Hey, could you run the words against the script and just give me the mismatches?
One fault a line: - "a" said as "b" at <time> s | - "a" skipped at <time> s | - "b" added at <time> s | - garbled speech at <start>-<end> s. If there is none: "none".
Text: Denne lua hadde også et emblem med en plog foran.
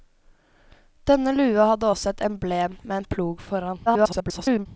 - garbled speech at 3.9-4.7 s